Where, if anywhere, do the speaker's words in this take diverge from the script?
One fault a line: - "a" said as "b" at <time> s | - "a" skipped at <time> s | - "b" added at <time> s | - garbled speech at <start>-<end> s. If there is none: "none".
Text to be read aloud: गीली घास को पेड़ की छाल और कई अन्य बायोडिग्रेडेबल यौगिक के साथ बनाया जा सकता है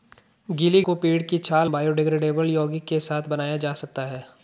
- "घास" skipped at 0.8 s
- "और कई अन्य" skipped at 1.7 s